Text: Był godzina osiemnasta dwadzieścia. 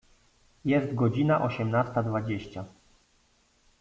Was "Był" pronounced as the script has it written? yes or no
no